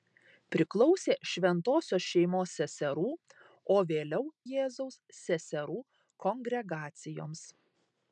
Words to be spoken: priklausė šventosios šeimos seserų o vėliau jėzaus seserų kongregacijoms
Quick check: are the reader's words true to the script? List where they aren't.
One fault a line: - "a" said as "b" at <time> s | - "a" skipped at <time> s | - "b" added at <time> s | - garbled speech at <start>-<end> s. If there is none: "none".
none